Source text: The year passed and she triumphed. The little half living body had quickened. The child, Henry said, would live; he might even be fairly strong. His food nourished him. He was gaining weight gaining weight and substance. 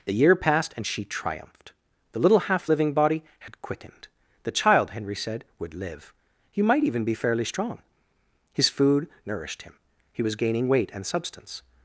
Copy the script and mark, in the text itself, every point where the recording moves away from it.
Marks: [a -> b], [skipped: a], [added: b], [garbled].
The year passed and she triumphed. The little half living body had quickened. The child, Henry said, would live; he might even be fairly strong. His food nourished him. He was gaining weight [skipped: gaining weight] and substance.